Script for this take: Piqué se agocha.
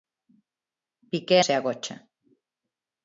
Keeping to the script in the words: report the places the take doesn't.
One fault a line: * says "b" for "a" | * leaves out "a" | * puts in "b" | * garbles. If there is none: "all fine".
all fine